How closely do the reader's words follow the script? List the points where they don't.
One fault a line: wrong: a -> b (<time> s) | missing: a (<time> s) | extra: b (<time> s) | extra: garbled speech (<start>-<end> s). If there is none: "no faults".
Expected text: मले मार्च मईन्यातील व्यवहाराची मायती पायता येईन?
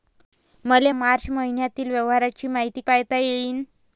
no faults